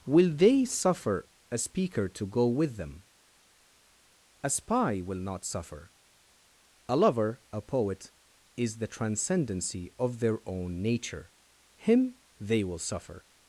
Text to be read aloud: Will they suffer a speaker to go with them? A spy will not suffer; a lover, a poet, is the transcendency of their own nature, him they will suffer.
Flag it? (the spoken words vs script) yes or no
no